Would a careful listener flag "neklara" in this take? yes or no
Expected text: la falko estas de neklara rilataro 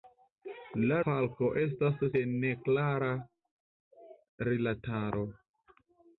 no